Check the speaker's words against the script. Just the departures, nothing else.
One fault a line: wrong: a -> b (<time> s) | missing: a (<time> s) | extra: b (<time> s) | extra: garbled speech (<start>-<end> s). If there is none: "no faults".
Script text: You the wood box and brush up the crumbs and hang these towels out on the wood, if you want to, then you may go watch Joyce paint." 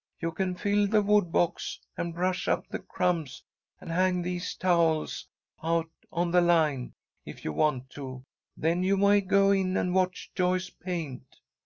extra: can fill (0.3 s)
wrong: wood -> line (6.4 s)
extra: in and (9.5 s)